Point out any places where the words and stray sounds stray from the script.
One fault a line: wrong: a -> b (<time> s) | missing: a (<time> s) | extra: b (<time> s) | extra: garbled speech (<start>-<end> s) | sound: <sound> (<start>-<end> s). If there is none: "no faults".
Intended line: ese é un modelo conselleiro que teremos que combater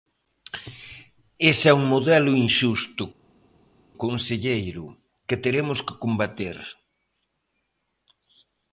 extra: inxusto (2.5 s)